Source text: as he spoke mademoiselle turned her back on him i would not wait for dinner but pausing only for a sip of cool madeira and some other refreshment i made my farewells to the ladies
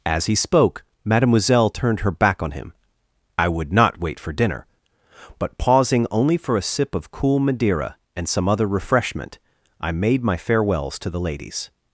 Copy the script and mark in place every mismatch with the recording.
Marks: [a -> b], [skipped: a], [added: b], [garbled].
as he spoke mademoiselle turned her back on him i would not wait for dinner but pausing only for a sip of cool madeira and some other refreshment i made my farewells to the ladies